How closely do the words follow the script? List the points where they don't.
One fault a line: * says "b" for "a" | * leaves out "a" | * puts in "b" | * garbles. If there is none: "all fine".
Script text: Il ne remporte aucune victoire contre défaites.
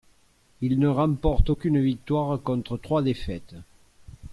* puts in "trois"